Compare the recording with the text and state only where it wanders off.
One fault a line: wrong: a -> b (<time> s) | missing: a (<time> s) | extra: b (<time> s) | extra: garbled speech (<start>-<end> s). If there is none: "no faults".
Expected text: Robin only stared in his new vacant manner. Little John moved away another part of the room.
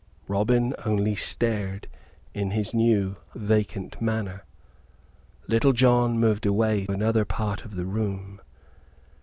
no faults